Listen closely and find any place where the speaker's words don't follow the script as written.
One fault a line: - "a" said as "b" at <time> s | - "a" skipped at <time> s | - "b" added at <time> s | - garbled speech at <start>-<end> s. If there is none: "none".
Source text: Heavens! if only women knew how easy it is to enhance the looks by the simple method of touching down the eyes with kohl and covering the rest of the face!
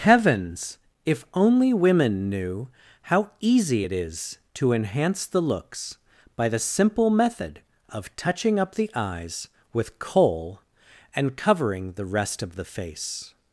- "down" said as "up" at 8.6 s